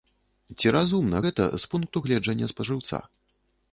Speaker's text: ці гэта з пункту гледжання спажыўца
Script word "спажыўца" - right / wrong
right